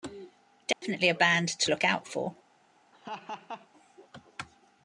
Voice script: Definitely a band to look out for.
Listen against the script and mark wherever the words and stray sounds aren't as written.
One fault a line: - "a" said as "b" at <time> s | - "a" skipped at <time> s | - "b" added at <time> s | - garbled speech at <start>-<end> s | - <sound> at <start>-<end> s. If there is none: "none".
- dropout at 0.7-0.8 s
- laugh at 2.9-3.7 s